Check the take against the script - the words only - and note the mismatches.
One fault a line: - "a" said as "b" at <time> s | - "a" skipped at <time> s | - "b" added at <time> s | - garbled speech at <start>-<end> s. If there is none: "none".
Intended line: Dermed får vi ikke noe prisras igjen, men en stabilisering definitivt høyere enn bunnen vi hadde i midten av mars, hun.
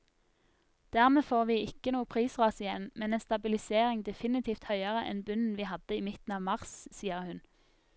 - "sier" added at 7.0 s